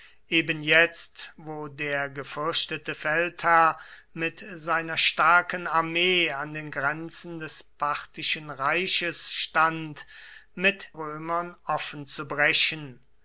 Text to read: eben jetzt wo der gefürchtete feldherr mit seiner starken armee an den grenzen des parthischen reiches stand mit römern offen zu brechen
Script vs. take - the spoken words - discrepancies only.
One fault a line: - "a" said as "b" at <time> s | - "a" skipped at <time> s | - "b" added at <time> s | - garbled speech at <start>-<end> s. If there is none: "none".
none